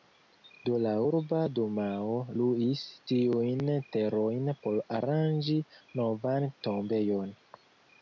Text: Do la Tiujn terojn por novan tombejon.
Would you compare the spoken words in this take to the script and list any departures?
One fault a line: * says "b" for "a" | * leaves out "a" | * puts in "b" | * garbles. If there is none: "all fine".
* puts in "Urba Dumao luis"
* puts in "aranĝi"